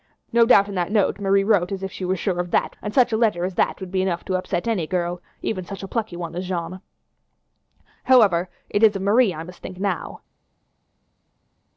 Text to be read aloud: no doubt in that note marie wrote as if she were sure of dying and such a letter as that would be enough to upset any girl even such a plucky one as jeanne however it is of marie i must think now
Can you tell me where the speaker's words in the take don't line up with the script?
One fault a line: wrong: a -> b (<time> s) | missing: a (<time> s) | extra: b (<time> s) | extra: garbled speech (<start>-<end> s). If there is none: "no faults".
wrong: dying -> that (2.5 s)